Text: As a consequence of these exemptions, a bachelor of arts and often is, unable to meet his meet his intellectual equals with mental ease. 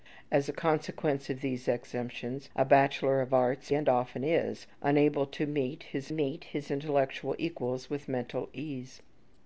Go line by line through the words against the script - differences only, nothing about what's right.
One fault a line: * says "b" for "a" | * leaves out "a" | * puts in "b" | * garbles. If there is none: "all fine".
all fine